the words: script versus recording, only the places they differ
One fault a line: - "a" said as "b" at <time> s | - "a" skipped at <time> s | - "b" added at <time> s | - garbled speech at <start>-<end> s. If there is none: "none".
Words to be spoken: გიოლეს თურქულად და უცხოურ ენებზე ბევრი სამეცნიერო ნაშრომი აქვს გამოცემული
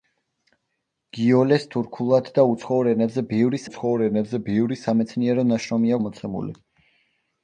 - "უცხოურ ენებზე ბევრი" added at 3.7 s
- "აქვს" skipped at 5.9 s